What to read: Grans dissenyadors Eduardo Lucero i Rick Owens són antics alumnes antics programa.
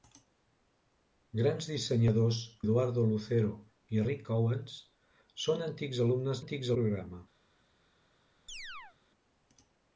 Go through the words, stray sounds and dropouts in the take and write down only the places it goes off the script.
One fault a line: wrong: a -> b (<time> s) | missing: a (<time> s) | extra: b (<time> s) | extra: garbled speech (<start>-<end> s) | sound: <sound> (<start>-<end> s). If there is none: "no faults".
sound: chirp (8.5-9.0 s)